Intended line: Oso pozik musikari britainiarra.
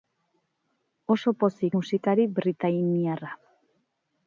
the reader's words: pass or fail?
pass